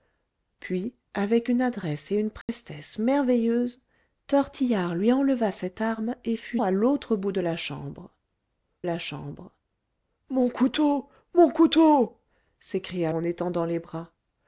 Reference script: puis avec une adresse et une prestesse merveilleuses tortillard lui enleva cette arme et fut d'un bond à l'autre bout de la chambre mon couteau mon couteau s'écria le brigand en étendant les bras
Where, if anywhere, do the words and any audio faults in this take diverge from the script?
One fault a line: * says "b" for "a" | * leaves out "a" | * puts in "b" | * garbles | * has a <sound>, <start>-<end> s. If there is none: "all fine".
* has a dropout, 2.4-2.5 s
* leaves out "d'un bond"
* puts in "la chambre"
* leaves out "le brigand"